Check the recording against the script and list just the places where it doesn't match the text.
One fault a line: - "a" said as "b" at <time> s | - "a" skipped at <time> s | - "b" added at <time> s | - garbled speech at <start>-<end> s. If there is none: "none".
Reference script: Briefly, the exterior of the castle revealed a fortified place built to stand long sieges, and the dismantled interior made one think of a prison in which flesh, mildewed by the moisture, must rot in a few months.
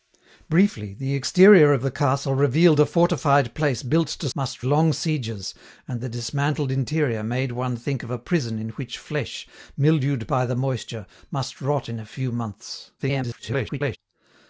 - "stand" said as "must" at 4.3 s
- garbled speech at 13.0-14.0 s